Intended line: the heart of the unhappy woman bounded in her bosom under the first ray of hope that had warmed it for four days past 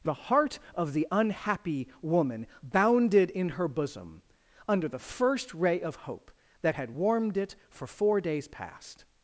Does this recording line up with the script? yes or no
yes